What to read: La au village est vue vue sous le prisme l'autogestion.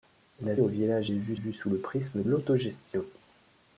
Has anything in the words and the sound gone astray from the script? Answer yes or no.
no